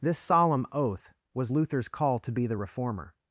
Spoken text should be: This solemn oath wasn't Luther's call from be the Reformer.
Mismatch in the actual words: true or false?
true